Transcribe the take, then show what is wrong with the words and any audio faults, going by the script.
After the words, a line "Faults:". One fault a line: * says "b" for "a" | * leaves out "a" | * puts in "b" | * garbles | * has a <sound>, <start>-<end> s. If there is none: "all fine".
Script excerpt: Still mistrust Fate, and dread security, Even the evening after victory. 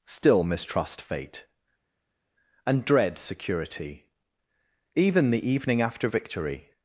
Still mistrust Fate, and dread security, Even the evening after victory.
Faults:
all fine